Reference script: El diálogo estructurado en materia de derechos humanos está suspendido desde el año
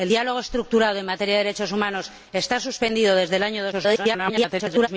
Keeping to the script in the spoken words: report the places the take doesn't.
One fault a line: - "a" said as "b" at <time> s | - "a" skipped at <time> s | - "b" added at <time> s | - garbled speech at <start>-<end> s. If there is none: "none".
- garbled speech at 3.7-4.9 s